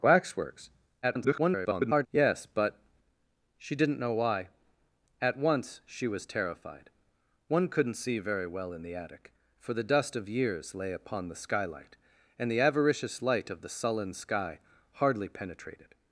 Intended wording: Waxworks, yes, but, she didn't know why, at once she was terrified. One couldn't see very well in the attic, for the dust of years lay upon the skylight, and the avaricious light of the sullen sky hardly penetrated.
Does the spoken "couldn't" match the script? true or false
true